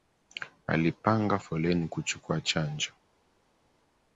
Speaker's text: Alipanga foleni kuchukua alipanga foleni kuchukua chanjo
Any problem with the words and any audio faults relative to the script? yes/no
yes